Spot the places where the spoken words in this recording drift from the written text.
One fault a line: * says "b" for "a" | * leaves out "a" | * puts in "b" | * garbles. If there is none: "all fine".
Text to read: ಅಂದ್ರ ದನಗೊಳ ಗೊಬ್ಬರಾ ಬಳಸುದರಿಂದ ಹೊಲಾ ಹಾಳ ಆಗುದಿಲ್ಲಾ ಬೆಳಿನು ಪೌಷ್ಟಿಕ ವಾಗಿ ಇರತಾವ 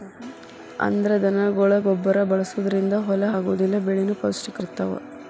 * leaves out "ಹಾಳ"
* leaves out "ವಾಗಿ"